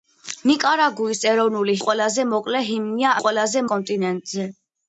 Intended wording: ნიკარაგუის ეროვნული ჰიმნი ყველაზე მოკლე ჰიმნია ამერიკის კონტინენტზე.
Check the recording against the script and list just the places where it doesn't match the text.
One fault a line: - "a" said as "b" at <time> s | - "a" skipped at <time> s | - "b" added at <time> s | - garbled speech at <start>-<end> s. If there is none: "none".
- "ჰიმნი" skipped at 1.8 s
- "ამერიკის" said as "ყველაზე" at 3.2 s